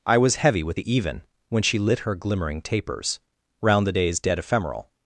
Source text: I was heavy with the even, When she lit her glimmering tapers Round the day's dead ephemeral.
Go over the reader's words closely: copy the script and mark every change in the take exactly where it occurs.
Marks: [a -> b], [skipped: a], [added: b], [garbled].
I was heavy with the even, When she lit her glimmering tapers Round the day's dead ephemeral.